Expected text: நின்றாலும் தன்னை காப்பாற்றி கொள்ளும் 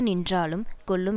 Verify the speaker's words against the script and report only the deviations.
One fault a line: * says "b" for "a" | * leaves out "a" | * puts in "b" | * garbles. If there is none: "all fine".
* leaves out "தன்னை காப்பாற்றி"